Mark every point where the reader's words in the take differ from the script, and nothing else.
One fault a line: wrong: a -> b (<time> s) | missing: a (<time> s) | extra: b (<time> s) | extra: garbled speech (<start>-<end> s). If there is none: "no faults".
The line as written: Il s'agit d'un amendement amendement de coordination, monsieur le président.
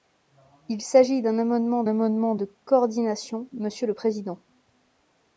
no faults